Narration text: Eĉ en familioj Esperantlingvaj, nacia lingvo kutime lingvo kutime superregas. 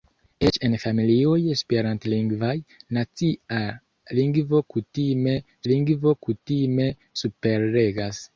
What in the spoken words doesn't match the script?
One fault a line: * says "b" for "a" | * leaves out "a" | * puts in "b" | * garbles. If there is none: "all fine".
all fine